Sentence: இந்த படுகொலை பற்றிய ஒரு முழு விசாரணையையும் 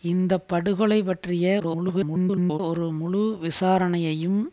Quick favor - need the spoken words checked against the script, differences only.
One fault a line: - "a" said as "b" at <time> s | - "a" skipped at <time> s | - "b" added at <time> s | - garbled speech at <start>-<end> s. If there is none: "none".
- garbled speech at 1.6-2.6 s